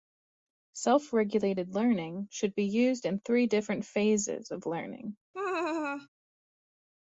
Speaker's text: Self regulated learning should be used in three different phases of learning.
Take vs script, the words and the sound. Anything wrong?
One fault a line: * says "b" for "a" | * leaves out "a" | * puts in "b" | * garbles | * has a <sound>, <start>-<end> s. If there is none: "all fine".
* has a laugh, 5.3-6.1 s